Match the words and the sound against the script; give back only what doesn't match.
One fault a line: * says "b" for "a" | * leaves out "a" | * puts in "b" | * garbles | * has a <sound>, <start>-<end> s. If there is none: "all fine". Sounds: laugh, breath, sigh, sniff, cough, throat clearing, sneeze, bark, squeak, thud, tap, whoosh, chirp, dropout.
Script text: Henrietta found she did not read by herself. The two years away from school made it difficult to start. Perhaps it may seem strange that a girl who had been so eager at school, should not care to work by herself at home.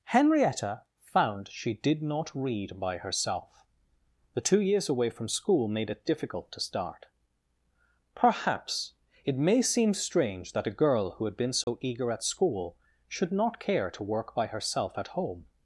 * has a dropout, 11.6-11.7 s